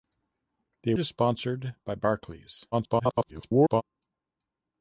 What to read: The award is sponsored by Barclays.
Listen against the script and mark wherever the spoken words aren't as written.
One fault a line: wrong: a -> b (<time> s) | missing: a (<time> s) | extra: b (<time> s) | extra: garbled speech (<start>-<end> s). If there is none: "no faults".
missing: award (0.9 s)
extra: garbled speech (2.7-3.8 s)